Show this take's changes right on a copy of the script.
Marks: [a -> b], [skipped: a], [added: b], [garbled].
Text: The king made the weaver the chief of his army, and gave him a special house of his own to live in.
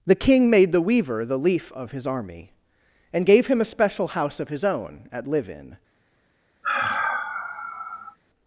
The king made the weaver the [chief -> leaf] of his army, and gave him a special house of his own [to -> at] live in.